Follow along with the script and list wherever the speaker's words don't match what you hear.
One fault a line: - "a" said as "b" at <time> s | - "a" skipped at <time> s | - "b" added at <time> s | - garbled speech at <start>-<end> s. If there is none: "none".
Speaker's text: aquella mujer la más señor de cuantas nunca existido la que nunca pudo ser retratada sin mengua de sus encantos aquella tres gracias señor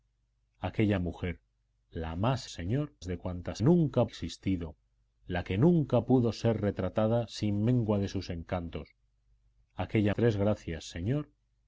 none